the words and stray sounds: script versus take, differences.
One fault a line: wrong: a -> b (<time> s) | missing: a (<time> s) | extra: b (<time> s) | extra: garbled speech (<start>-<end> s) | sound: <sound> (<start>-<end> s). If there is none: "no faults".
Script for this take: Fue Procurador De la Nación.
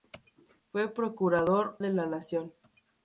no faults